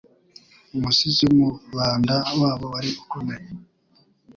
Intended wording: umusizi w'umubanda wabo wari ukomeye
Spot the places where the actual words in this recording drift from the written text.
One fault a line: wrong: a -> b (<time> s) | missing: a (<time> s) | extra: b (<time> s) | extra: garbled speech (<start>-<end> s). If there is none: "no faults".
no faults